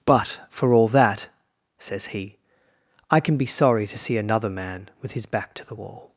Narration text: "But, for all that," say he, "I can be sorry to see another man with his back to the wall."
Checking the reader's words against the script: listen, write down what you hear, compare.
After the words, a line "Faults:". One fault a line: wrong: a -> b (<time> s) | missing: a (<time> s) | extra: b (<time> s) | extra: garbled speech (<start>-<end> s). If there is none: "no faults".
"But, for all that," says he, "I can be sorry to see another man with his back to the wall."
Faults:
wrong: say -> says (1.8 s)